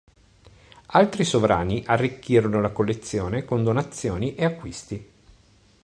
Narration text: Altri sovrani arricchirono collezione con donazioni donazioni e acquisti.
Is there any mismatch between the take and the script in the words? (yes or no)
yes